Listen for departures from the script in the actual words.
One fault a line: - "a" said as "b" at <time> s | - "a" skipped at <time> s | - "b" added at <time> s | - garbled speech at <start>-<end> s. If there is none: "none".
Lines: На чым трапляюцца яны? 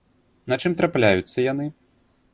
none